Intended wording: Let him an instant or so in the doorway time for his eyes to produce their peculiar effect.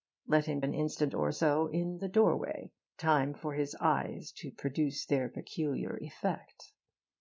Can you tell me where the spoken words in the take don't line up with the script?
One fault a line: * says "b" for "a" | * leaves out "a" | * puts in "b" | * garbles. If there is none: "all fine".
all fine